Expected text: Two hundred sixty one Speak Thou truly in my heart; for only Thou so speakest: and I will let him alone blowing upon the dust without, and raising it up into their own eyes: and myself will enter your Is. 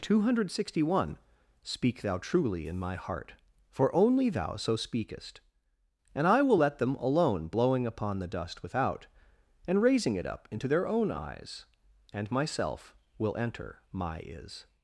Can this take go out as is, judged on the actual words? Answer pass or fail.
fail